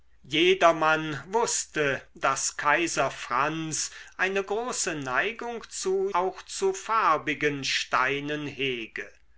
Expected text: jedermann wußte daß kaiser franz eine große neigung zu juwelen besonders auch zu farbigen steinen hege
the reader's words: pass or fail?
fail